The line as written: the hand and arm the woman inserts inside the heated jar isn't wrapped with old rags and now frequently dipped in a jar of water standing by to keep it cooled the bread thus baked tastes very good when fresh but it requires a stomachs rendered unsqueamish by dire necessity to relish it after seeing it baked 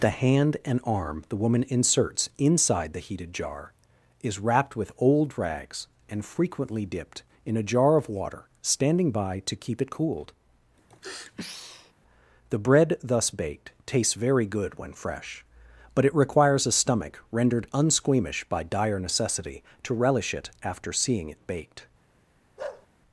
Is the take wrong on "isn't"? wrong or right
wrong